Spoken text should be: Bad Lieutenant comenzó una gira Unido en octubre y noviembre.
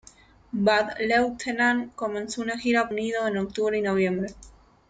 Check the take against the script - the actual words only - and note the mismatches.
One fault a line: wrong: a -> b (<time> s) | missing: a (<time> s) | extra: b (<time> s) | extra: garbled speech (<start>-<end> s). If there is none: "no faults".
no faults